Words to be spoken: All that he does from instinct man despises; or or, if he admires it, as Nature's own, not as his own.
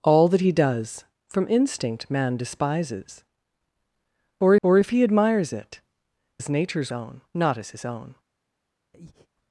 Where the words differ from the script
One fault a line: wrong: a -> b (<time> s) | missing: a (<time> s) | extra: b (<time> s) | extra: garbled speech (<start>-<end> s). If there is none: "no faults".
no faults